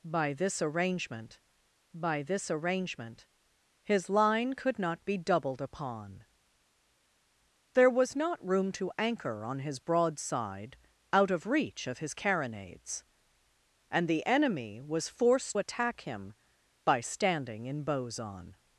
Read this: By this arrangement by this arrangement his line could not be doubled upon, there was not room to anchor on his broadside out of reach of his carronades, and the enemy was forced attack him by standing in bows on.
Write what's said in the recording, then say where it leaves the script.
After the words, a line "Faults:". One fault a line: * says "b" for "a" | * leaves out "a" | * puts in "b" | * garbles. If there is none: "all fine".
By this arrangement by this arrangement his line could not be doubled upon, there was not room to anchor on his broadside out of reach of his carronades, and the enemy was forced attack him by standing in bows on.
Faults:
all fine